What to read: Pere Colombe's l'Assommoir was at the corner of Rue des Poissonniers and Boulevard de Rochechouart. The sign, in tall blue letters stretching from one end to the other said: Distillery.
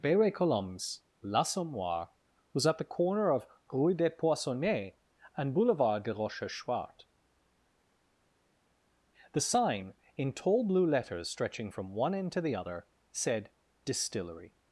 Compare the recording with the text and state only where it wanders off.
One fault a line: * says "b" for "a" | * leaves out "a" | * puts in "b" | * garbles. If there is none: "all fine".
all fine